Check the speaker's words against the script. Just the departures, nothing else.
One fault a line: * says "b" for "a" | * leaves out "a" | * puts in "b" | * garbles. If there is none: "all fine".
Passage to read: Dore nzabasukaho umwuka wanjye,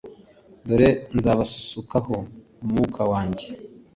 all fine